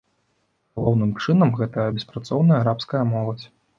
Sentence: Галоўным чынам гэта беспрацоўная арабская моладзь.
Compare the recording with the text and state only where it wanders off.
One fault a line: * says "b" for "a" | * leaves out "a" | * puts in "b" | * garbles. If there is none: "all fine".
all fine